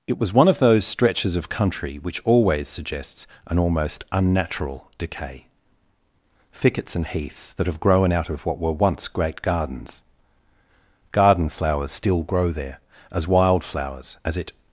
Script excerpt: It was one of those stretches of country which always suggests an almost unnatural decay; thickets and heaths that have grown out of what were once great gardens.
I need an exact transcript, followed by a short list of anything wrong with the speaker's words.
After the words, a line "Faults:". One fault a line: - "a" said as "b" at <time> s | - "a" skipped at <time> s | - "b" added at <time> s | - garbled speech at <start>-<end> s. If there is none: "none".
It was one of those stretches of country which always suggests an almost unnatural decay; thickets and heaths that have grown out of what were once great gardens. Garden flowers still grow there as wild flowers, as it
Faults:
- "Garden flowers still grow there as wild flowers as it" added at 11.1 s